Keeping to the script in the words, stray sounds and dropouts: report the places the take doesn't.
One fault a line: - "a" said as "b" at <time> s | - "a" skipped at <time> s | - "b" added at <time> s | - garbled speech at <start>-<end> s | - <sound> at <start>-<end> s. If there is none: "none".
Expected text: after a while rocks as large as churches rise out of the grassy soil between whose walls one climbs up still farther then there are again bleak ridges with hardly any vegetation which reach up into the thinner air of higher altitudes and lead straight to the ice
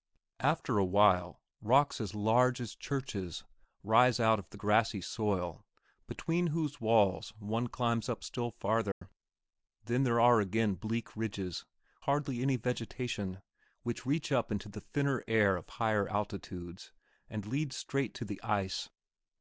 - dropout at 8.9-9.0 s
- "with" skipped at 11.6 s